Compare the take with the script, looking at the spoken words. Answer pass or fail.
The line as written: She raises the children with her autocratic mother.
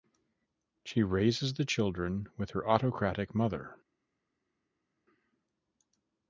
pass